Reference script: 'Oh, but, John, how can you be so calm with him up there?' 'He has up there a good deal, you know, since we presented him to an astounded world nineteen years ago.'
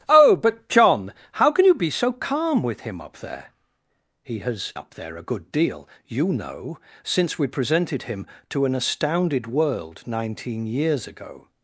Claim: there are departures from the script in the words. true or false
false